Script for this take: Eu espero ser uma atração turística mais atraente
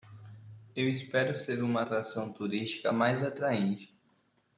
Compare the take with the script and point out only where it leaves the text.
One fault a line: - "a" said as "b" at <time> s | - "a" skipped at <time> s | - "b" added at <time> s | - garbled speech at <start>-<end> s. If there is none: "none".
none